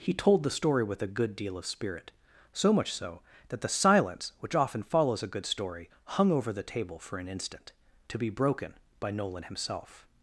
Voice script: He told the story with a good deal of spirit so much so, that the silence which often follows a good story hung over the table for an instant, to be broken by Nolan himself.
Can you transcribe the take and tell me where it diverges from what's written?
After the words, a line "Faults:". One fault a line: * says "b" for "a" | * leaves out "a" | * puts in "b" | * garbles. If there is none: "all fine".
He told the story with a good deal of spirit so much so, that the silence which often follows a good story hung over the table for an instant, to be broken by Nolan himself.
Faults:
all fine